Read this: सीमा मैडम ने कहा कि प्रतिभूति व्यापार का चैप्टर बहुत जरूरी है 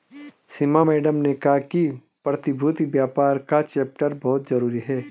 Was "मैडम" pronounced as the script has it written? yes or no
yes